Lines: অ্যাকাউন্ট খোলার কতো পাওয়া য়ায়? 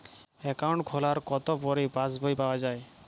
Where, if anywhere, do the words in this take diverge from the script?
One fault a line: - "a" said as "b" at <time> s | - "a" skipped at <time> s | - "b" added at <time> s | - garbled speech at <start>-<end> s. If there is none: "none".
- "পরে পাস বই" added at 1.6 s